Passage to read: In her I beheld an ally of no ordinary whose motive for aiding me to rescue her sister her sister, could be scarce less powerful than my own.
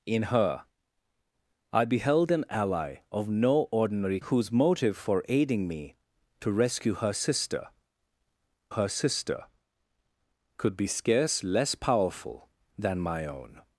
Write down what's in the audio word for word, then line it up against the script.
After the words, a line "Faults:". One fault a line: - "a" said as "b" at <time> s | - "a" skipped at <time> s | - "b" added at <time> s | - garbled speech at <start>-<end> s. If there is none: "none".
In her I beheld an ally of no ordinary whose motive for aiding me to rescue her sister her sister, could be scarce less powerful than my own.
Faults:
none